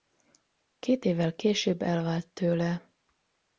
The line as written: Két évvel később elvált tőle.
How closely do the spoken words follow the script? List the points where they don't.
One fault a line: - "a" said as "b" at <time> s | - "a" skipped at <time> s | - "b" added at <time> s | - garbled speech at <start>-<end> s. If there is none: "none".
none